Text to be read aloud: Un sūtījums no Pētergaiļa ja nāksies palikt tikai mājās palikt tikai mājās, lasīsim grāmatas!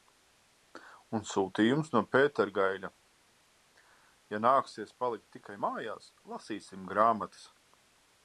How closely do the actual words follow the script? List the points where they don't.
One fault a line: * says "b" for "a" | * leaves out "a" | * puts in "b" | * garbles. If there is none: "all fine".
* leaves out "palikt tikai mājās"